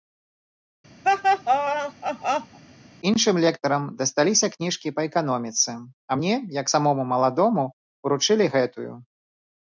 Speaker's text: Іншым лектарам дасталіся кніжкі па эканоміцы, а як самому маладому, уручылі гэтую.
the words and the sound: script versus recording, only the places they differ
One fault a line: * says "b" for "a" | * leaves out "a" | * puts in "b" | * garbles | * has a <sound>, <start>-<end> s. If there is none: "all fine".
* has a laugh, 1.0-2.6 s
* puts in "мне"